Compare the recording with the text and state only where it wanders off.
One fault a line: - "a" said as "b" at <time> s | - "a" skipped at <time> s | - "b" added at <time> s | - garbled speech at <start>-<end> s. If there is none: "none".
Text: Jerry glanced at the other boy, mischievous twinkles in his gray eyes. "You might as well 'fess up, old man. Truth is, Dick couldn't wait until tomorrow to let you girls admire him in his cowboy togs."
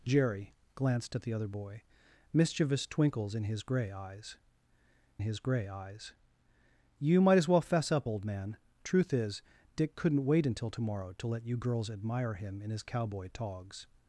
- "his gray eyes" added at 5.2 s